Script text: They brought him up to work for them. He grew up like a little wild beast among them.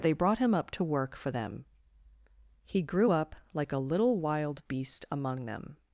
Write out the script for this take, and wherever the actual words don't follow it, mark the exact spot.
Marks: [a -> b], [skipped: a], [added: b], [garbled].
They brought him up to work for them. He grew up like a little wild beast among them.